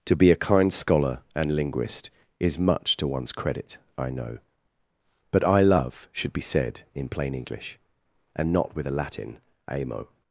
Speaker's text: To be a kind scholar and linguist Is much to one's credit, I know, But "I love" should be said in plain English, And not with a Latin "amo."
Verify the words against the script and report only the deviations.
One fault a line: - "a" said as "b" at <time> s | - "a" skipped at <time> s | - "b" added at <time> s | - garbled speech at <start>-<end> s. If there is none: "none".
none